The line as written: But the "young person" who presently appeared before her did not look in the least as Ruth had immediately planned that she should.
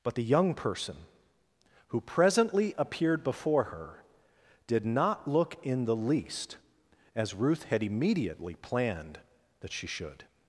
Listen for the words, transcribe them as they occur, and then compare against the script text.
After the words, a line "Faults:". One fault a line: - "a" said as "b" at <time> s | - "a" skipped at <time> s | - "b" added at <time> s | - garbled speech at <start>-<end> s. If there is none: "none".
But the "young person" who presently appeared before her did not look in the least as Ruth had immediately planned that she should.
Faults:
none